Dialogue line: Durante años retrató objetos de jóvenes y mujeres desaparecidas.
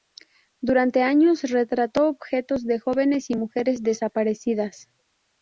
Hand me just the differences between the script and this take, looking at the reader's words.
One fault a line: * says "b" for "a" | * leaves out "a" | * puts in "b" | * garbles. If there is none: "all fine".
all fine